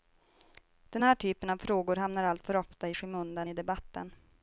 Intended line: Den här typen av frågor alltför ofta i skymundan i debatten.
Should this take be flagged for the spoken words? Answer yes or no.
yes